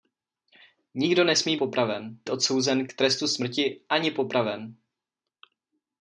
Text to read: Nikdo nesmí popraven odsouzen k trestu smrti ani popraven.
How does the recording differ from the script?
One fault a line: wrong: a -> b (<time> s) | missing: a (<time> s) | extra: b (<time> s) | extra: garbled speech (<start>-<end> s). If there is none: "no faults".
no faults